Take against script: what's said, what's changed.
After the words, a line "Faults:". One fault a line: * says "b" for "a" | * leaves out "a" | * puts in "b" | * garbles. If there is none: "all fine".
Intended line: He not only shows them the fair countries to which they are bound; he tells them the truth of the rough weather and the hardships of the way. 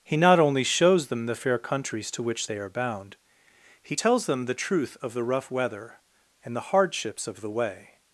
He not only shows them the fair countries to which they are bound; he tells them the truth of the rough weather and the hardships of the way.
Faults:
all fine